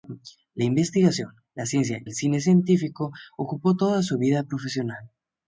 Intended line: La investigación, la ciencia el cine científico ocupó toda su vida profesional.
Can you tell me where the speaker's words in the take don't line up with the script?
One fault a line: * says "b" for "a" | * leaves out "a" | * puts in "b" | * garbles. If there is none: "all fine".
all fine